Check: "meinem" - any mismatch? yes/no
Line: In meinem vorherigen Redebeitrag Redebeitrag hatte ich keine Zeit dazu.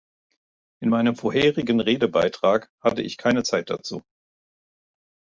no